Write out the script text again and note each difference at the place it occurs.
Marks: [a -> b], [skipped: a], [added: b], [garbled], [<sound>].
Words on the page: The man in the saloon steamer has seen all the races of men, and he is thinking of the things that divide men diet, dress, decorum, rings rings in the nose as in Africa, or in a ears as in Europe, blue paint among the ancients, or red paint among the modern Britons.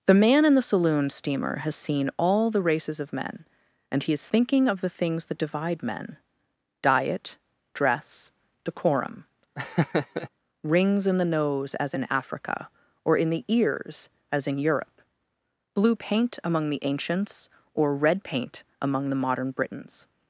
The man in the saloon steamer has seen all the races of men, and he is thinking of the things that divide men diet, dress, decorum, [laugh] rings [skipped: rings] in the nose as in Africa, or in [a -> the] ears as in Europe, blue paint among the ancients, or red paint among the modern Britons.